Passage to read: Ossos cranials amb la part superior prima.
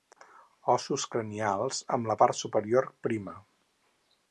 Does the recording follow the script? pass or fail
pass